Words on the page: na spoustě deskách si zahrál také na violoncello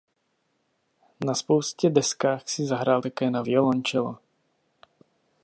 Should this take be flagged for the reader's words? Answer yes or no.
no